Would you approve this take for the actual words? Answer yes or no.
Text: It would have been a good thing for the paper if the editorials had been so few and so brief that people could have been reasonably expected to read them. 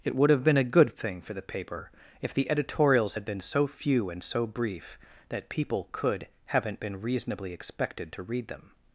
no